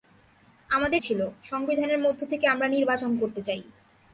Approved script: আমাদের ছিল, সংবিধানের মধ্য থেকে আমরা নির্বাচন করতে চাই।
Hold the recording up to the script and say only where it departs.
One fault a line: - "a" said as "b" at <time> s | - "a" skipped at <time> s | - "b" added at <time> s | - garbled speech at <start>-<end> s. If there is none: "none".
none